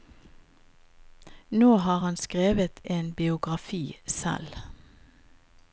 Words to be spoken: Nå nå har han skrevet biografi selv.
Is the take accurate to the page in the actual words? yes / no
no